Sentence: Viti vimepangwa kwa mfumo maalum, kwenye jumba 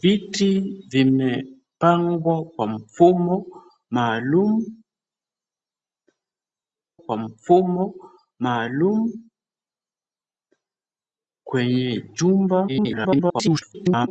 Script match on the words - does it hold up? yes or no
no